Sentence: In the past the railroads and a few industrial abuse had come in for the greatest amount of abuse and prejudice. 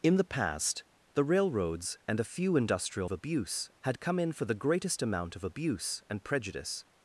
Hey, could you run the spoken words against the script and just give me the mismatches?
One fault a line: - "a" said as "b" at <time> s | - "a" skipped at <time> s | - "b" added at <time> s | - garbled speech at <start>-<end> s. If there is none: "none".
none